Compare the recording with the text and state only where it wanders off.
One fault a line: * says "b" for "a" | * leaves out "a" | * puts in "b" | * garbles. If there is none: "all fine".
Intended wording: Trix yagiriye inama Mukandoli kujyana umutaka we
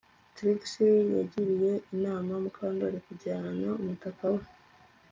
all fine